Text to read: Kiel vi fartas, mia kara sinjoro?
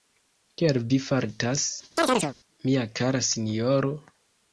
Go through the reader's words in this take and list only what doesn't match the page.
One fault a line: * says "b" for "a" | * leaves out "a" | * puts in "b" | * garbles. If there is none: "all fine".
all fine